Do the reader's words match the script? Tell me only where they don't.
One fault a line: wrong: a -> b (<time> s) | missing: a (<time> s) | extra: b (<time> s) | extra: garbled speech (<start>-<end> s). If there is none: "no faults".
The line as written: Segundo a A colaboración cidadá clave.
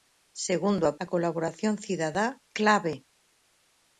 no faults